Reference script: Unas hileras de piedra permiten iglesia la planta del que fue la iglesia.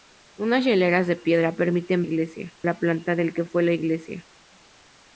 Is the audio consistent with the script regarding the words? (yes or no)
yes